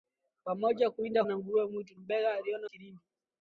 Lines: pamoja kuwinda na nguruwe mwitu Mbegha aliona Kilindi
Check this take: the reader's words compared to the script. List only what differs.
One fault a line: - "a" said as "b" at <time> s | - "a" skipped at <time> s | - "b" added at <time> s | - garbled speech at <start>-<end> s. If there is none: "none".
none